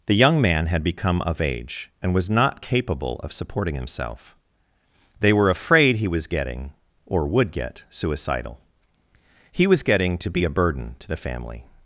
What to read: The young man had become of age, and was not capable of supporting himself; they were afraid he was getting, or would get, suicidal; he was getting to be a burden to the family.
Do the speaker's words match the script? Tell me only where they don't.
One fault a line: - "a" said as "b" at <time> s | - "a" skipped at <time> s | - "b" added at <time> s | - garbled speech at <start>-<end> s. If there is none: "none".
none